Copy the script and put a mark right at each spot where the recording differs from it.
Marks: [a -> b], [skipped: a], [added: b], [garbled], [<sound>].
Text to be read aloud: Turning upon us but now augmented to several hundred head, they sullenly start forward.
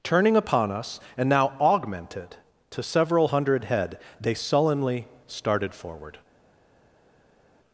Turning upon us [but -> and] now augmented to several hundred head, they sullenly [start -> started] forward.